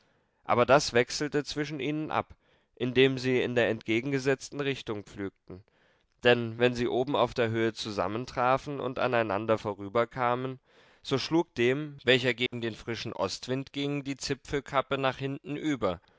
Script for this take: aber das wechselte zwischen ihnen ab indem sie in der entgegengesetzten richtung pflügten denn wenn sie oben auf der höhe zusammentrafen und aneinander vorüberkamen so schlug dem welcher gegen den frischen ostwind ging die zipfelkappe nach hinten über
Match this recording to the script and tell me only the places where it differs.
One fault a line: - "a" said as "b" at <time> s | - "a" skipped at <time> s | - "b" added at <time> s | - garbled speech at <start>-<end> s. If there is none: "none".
none